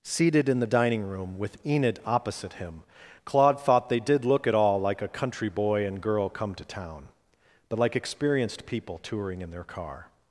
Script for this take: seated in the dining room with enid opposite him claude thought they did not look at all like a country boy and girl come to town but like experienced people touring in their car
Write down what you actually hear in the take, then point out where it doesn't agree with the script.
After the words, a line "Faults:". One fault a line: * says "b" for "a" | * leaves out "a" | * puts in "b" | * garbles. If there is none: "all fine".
seated in the dining room with enid opposite him claude thought they did look at all like a country boy and girl come to town but like experienced people touring in their car
Faults:
* leaves out "not"